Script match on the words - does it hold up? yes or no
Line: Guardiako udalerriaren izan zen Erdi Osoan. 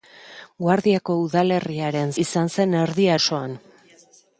yes